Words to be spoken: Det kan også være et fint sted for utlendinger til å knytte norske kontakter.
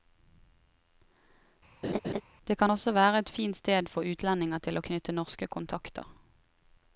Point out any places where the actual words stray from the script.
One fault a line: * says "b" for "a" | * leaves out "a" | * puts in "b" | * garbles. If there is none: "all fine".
all fine